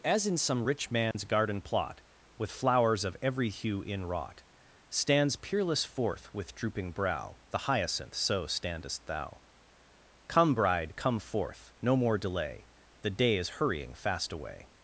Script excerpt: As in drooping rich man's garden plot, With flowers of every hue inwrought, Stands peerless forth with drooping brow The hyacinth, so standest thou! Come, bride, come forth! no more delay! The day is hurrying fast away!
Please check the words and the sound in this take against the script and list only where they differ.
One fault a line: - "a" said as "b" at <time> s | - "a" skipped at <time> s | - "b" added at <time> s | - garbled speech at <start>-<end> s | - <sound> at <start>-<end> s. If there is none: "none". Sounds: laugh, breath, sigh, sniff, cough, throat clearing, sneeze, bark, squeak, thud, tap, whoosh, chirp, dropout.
- "drooping" said as "some" at 0.4 s
- dropout at 1.1-1.1 s